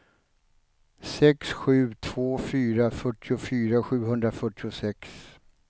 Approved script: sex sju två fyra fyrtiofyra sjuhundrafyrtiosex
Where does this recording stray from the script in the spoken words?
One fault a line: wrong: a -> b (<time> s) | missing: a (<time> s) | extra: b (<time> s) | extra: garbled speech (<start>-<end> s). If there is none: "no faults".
no faults